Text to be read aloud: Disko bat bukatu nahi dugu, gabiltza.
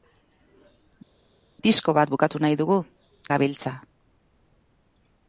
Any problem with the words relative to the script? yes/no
no